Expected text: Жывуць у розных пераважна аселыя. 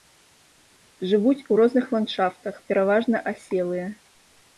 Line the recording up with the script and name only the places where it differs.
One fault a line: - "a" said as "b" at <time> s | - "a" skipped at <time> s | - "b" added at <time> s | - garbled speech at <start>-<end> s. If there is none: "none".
- "ландшафтах" added at 2.0 s